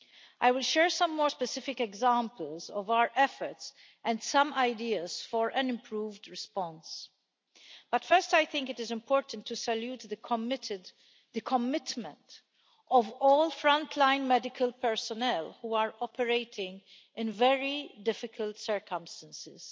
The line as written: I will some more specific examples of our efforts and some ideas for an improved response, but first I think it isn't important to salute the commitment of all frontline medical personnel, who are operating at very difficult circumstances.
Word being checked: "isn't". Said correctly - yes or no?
no